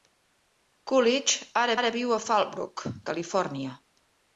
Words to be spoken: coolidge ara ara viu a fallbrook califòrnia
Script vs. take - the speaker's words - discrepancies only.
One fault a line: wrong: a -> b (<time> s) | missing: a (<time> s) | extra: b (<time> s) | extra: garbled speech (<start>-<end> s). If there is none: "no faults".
no faults